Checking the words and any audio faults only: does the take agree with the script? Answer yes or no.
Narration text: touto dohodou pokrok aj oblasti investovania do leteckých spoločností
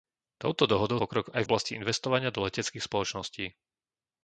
yes